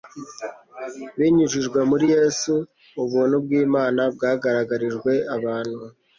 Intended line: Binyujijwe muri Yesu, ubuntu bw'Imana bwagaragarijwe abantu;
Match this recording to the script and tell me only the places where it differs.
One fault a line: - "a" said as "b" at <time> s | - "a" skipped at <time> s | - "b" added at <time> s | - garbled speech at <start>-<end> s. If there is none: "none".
none